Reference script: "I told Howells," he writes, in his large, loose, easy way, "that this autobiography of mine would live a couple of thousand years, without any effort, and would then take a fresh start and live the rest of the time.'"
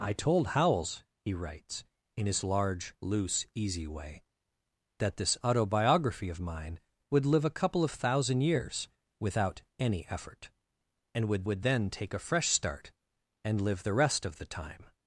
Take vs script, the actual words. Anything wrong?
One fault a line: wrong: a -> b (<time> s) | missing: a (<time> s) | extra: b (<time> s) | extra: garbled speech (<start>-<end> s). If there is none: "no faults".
extra: would (11.5 s)